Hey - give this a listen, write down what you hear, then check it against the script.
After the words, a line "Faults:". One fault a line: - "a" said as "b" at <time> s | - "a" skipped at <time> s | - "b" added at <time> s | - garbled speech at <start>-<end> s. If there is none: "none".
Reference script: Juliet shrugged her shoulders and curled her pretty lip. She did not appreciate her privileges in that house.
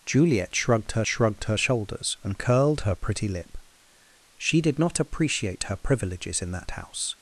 Juliet shrugged her shrugged her shoulders and curled her pretty lip. She did not appreciate her privileges in that house.
Faults:
- "shrugged her" added at 1.1 s